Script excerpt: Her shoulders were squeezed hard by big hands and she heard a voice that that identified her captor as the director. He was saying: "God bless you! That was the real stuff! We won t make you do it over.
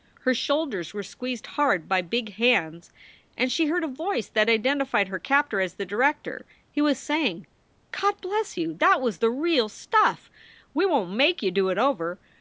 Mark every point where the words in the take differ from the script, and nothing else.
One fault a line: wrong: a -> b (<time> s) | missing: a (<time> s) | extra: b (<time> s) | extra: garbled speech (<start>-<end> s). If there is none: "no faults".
missing: that (4.5 s)